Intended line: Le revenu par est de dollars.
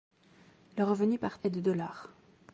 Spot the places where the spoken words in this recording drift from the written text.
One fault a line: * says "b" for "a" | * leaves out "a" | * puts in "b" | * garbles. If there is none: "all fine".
all fine